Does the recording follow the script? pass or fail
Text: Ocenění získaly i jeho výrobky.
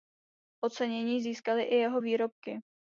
pass